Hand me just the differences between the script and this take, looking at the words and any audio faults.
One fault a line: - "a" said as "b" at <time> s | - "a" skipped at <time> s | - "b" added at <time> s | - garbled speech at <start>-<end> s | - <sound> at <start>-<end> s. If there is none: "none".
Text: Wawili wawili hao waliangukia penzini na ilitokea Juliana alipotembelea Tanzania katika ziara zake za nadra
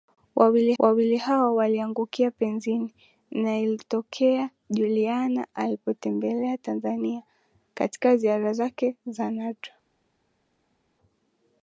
none